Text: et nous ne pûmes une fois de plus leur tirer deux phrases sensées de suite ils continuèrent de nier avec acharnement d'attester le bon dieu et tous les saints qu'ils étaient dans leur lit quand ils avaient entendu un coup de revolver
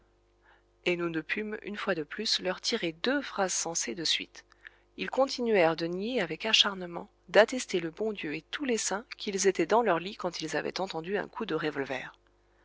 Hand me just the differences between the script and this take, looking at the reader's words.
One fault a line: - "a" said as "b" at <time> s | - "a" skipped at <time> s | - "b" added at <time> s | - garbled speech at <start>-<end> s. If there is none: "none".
none